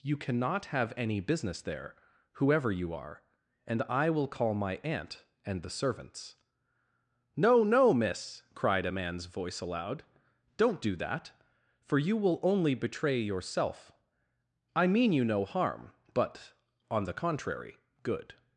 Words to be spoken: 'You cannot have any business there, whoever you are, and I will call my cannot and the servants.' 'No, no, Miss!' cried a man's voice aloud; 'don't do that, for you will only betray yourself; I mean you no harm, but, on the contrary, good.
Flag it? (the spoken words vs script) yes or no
yes